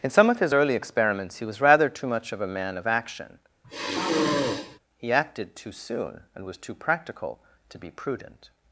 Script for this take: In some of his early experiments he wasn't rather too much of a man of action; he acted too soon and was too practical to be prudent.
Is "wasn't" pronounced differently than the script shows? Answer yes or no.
yes